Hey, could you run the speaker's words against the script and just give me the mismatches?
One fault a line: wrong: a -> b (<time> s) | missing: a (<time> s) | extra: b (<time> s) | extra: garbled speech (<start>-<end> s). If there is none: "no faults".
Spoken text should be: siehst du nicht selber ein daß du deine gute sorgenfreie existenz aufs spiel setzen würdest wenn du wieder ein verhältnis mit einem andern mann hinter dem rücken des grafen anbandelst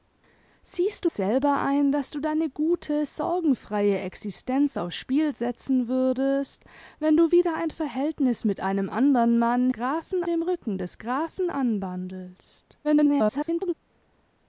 missing: nicht (1.1 s)
wrong: hinter -> grafen (9.7 s)
extra: garbled speech (12.8-13.7 s)